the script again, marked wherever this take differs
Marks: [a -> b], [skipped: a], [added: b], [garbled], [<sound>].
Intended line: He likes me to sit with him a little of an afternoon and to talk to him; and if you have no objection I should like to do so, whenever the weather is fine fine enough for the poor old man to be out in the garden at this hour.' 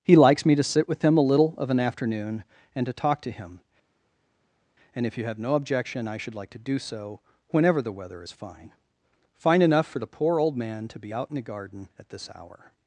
He likes me to sit with him a little of an afternoon and to talk to him; and if you have no objection I should like to do so, whenever the weather is fine fine enough for the poor old man to be out in the garden at this hour.'